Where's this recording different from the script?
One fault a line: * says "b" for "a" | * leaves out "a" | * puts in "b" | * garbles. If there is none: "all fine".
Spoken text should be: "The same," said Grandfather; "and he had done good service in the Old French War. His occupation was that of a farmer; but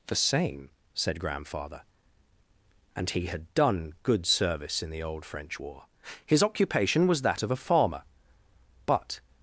all fine